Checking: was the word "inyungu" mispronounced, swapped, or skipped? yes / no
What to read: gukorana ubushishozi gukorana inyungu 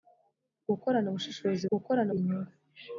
no